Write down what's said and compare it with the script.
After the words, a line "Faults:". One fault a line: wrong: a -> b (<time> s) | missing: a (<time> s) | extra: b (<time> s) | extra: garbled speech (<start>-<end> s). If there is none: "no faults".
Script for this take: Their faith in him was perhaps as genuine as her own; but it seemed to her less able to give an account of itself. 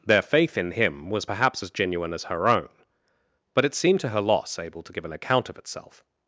Their faith in him was perhaps as genuine as her own; but it seemed to her loss able to give an account of itself.
Faults:
wrong: less -> loss (4.2 s)